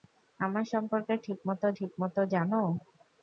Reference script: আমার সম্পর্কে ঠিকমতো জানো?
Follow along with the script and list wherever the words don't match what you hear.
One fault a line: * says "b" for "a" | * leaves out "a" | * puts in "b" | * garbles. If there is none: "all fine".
* puts in "ঠিকমতো"